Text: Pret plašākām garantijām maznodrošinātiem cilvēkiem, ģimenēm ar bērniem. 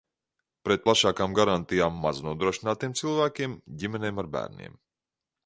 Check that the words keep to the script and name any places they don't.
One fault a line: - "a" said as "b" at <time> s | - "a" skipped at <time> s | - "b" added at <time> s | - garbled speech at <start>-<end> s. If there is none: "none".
none